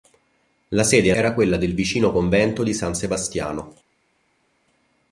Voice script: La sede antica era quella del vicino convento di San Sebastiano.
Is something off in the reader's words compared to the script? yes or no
yes